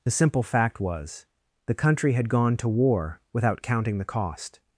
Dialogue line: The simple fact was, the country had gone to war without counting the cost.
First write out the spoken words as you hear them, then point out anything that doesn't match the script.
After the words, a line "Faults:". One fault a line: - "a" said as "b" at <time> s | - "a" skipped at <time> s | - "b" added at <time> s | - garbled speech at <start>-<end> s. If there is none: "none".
The simple fact was, the country had gone to war without counting the cost.
Faults:
none